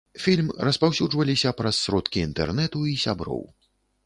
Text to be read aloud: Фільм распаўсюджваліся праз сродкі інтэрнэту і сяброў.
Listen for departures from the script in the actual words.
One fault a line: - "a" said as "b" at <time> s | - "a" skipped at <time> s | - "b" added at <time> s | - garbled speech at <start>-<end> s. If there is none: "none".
none